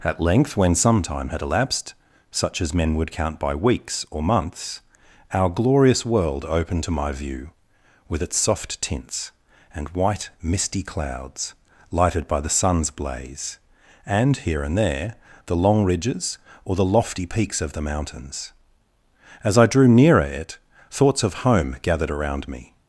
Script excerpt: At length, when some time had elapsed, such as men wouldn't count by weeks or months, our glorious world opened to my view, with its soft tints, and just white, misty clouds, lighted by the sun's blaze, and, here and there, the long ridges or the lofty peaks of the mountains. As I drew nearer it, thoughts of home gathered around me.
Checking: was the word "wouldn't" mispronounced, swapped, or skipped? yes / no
yes